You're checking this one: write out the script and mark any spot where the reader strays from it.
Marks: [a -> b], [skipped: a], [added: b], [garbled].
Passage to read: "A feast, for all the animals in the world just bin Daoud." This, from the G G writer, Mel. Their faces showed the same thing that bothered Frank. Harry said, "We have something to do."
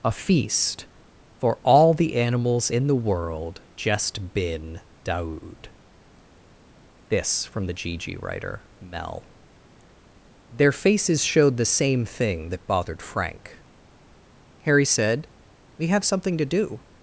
"A feast, for all the animals in the world just bin Daoud." This, from the G G writer, Mel. Their faces showed the same thing that bothered Frank. Harry said, "We have something to do."